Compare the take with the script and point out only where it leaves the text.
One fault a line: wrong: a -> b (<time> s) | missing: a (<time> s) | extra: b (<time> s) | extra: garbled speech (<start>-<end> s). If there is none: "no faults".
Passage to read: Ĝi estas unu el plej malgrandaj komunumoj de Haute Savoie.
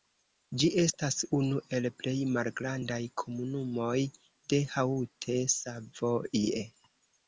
no faults